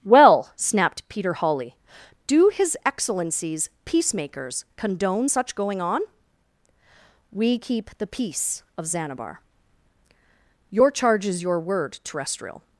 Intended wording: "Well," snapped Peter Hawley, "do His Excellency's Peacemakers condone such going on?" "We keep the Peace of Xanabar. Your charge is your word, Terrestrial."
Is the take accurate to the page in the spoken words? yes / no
yes